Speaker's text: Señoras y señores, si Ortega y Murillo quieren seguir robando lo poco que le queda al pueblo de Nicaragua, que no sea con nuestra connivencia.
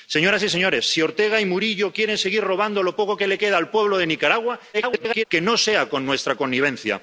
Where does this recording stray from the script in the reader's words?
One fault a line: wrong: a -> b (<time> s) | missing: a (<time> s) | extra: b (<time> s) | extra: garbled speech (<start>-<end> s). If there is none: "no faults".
extra: garbled speech (4.7-5.3 s)